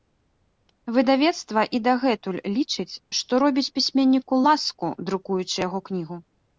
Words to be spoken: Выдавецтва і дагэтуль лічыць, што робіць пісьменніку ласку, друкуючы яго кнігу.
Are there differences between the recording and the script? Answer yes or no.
no